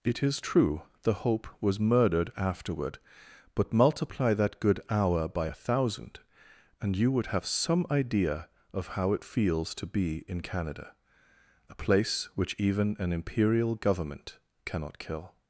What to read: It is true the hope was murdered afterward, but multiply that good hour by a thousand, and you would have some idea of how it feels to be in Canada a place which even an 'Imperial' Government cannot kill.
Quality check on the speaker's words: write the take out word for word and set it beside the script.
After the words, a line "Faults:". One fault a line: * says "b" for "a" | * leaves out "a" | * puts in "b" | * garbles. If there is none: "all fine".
It is true the hope was murdered afterward, but multiply that good hour by a thousand, and you would have some idea of how it feels to be in Canada a place which even an 'Imperial' Government cannot kill.
Faults:
all fine